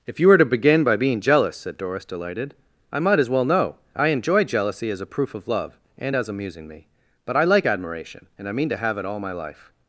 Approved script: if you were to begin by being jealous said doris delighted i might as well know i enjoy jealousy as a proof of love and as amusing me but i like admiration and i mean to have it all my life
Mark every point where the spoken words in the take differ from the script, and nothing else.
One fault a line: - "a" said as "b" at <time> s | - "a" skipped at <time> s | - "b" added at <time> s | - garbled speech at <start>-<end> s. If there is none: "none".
none